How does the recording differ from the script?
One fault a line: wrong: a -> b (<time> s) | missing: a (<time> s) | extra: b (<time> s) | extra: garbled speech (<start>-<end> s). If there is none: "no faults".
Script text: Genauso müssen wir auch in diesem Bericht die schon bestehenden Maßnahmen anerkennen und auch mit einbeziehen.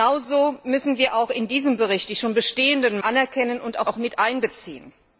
missing: Maßnahmen (3.0 s)
extra: auch (3.9 s)